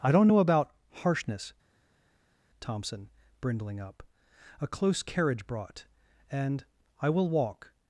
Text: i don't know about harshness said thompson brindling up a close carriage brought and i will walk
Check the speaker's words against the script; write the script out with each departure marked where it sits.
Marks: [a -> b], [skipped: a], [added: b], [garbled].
i don't know about harshness [skipped: said] thompson brindling up a close carriage brought and i will walk